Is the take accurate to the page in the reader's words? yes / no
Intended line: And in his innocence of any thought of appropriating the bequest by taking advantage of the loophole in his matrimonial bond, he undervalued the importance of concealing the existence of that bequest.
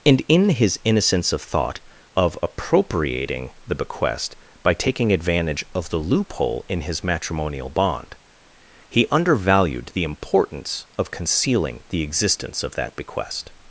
no